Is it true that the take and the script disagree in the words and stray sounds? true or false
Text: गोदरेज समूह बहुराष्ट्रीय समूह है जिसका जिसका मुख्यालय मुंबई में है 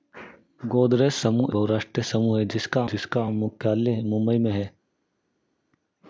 false